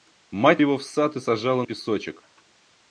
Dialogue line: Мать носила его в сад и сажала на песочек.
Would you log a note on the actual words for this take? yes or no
yes